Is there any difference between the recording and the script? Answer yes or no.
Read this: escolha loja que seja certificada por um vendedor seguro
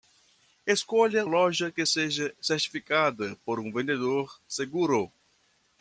no